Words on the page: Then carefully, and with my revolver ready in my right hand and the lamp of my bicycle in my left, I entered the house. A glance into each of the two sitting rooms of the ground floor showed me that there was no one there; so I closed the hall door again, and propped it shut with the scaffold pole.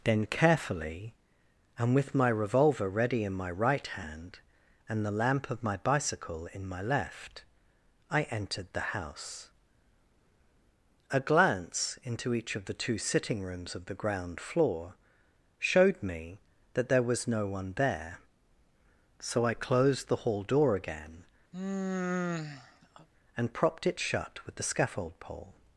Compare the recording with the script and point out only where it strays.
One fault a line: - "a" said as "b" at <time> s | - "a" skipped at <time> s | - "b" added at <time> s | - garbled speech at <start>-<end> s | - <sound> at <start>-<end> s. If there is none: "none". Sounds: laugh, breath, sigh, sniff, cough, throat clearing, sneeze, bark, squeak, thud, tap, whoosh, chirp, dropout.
- sigh at 21.5-23.1 s